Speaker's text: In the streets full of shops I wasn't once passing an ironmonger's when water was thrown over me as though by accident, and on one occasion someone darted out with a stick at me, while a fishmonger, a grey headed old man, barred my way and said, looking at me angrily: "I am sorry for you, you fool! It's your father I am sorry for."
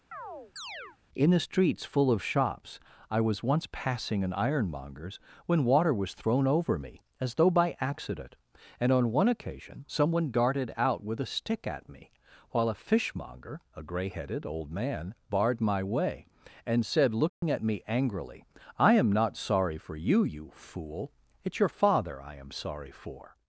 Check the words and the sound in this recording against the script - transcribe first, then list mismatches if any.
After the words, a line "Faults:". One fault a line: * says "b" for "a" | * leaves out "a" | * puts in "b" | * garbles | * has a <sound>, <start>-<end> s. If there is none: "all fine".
In the streets full of shops I was once passing an ironmonger's when water was thrown over me as though by accident, and on one occasion someone darted out with a stick at me, while a fishmonger, a grey headed old man, barred my way and said, looking at me angrily: "I am not sorry for you, you fool! It's your father I am sorry for."
Faults:
* has a chirp, 0.1-1.0 s
* says "was" for "wasn't"
* has a dropout, 17.3-17.4 s
* puts in "not"